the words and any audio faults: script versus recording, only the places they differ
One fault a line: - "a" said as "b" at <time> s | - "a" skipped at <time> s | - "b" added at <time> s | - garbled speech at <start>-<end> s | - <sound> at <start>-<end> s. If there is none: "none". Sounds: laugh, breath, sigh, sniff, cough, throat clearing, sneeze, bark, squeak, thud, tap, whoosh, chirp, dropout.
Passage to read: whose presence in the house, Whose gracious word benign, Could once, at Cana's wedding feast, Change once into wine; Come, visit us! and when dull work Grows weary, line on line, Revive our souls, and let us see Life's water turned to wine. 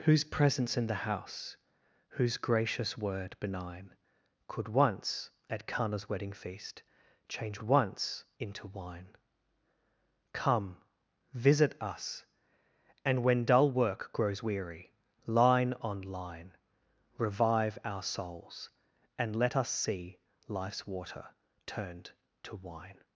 none